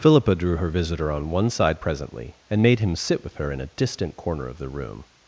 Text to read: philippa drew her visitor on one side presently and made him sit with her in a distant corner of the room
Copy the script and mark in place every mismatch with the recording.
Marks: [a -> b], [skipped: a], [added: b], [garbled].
philippa drew her visitor on one side presently and made him sit with her in a distant corner of the room